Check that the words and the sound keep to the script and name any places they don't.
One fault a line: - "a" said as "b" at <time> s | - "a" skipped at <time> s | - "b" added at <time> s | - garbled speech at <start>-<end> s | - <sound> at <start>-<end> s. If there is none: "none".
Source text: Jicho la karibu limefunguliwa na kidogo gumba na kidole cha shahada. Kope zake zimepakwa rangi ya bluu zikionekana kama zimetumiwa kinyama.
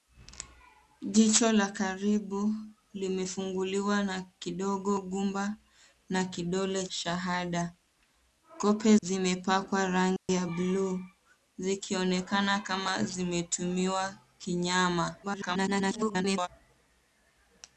- "cha" skipped at 6.9 s
- "zake" skipped at 9.0 s
- dropout at 10.2-10.3 s
- garbled speech at 15.2-16.5 s